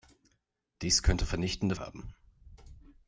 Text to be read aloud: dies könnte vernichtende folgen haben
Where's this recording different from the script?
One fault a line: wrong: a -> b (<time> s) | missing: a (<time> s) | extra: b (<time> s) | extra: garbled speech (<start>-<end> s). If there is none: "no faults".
missing: folgen (1.8 s)